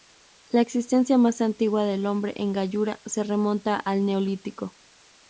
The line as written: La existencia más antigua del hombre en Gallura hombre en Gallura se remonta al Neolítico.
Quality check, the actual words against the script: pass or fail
fail